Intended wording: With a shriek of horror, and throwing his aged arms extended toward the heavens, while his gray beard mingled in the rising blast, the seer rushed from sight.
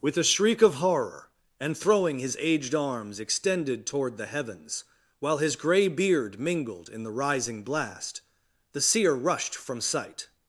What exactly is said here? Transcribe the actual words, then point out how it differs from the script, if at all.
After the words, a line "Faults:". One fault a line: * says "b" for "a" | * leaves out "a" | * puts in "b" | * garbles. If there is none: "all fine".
With a shriek of horror, and throwing his aged arms extended toward the heavens, while his gray beard mingled in the rising blast, the seer rushed from sight.
Faults:
all fine